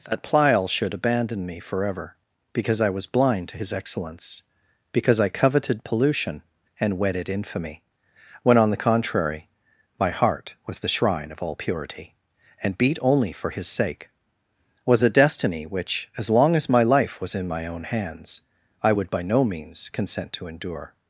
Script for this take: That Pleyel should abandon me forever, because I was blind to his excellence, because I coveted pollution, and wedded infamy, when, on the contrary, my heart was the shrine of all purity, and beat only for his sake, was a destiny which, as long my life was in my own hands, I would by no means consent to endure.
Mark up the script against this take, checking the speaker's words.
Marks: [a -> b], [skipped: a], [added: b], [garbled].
That Pleyel should abandon me forever, because I was blind to his excellence, because I coveted pollution, and wedded infamy, when, on the contrary, my heart was the shrine of all purity, and beat only for his sake, was a destiny which, as long [added: as] my life was in my own hands, I would by no means consent to endure.